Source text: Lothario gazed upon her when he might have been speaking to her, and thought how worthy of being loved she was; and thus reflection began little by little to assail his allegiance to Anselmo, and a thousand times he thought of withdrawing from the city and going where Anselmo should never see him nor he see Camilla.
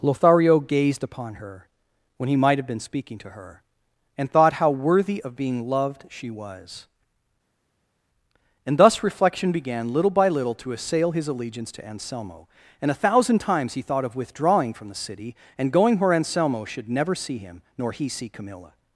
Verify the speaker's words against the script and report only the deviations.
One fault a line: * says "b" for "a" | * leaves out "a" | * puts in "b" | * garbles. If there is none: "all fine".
all fine